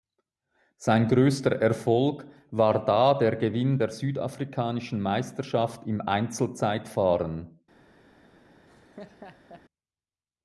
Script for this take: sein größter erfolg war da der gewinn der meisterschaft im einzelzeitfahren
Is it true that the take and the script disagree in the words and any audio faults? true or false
true